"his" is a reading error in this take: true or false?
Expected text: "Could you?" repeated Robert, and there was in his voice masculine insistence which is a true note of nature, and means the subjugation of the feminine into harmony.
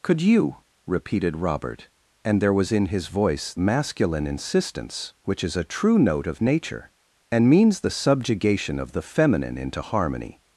false